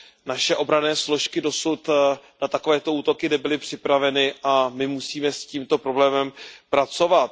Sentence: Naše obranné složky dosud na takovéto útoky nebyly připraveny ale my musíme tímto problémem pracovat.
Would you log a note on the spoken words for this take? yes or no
yes